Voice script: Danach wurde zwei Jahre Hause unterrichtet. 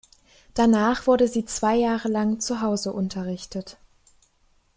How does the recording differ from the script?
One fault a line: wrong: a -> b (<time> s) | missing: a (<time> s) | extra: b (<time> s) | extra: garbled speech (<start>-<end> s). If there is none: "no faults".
extra: sie (1.3 s)
extra: lang zu (2.1 s)